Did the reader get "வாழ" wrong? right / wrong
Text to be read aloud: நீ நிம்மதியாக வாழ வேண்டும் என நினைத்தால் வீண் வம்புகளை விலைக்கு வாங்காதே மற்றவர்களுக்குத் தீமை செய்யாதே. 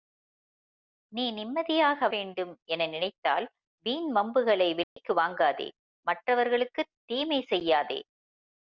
wrong